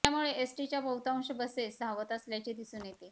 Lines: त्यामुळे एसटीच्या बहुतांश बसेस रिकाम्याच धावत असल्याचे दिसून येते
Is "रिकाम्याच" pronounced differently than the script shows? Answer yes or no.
yes